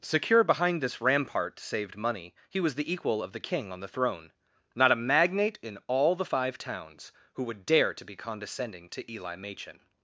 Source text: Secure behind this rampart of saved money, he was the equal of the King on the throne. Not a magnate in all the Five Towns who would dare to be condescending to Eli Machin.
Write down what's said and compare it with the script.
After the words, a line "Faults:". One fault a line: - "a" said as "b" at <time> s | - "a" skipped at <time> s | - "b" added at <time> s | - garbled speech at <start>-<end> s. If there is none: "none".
Secure behind this rampart saved money, he was the equal of the King on the throne. Not a magnate in all the Five Towns who would dare to be condescending to Eli Machin.
Faults:
- "of" skipped at 1.6 s